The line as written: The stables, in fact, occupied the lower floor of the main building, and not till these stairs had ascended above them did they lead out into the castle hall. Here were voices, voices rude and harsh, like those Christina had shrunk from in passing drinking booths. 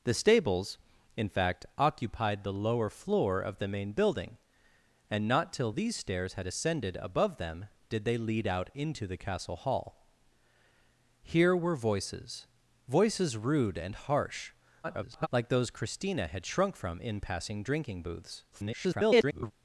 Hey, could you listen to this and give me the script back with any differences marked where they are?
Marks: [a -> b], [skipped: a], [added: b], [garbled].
The stables, in fact, occupied the lower floor of the main building, and not till these stairs had ascended above them did they lead out into the castle hall. Here were voices, voices rude and harsh, [garbled] like those Christina had shrunk from in passing drinking booths. [garbled]